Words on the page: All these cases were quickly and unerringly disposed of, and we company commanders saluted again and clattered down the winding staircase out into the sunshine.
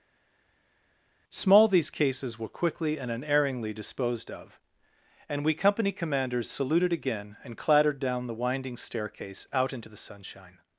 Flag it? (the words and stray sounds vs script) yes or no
yes